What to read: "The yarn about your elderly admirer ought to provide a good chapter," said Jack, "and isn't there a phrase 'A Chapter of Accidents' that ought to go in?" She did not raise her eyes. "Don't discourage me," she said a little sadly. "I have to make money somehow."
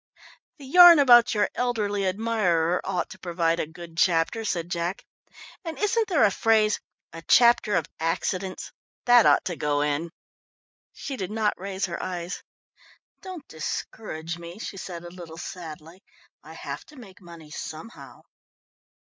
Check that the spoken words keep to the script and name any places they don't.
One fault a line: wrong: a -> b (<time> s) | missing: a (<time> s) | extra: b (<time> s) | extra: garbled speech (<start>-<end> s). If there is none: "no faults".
no faults